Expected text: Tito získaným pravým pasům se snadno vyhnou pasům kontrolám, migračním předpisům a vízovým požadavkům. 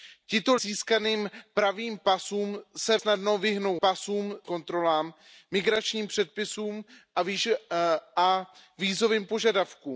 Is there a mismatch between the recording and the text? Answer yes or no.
no